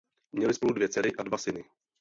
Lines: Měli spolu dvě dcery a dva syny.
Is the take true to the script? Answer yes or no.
yes